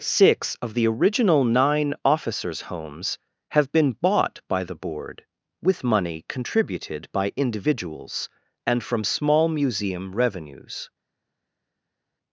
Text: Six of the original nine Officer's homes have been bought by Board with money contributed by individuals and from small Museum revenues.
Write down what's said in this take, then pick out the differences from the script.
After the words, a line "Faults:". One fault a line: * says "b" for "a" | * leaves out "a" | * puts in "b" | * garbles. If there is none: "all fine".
Six of the original nine Officer's homes have been bought by the Board with money contributed by individuals and from small Museum revenues.
Faults:
* puts in "the"